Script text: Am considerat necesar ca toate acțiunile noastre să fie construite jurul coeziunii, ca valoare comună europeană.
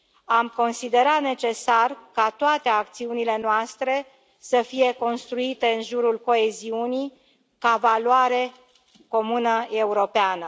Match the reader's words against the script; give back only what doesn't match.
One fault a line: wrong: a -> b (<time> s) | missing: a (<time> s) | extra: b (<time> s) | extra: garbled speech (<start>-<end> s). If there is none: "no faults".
extra: în (5.7 s)